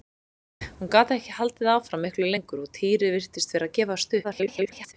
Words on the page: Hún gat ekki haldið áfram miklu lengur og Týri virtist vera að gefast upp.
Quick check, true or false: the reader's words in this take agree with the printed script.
false